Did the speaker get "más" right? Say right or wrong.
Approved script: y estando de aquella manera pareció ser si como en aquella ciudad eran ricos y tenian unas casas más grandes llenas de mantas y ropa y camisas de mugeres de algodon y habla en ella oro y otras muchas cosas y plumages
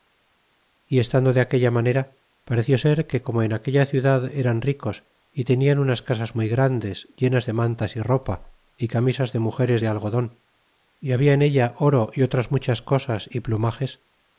wrong